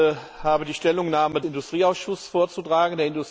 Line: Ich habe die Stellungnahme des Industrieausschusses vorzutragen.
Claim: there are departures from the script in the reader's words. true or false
true